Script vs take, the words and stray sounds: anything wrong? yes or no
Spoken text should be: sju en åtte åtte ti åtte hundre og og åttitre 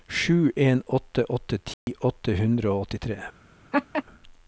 yes